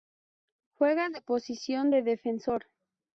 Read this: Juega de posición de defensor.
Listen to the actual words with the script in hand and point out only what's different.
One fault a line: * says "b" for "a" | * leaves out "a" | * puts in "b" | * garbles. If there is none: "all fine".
all fine